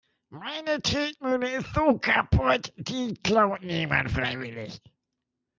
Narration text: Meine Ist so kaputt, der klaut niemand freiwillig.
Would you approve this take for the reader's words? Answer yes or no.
no